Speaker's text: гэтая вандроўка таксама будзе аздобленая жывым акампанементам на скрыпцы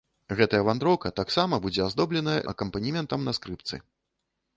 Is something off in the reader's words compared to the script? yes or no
yes